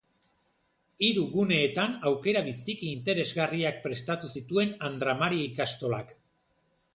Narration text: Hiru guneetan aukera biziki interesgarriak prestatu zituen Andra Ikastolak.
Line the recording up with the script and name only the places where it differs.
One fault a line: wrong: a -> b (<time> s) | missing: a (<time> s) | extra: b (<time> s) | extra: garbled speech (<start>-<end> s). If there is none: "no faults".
extra: Mari (5.2 s)